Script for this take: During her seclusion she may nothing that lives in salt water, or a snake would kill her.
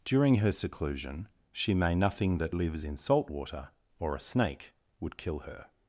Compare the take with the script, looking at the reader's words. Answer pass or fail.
pass